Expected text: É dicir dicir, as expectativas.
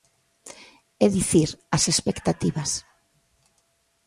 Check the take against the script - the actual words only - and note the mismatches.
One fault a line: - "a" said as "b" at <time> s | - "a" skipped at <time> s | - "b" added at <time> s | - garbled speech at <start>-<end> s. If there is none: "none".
- "dicir" skipped at 1.5 s